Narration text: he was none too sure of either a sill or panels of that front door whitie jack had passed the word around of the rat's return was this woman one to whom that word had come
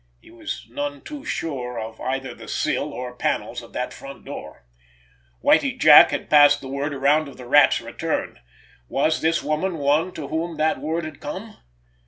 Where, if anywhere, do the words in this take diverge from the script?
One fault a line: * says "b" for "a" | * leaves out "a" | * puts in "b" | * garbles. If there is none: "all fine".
* says "the" for "a"